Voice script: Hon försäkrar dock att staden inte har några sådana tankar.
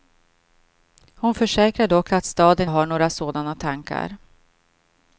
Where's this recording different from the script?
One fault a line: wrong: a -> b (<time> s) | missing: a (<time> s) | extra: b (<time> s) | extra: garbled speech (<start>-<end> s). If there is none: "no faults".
missing: inte (2.7 s)